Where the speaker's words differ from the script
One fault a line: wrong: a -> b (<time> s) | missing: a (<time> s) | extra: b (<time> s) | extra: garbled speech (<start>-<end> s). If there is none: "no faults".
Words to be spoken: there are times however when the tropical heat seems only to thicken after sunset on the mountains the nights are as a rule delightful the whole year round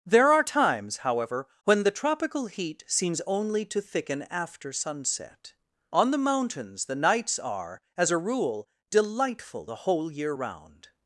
no faults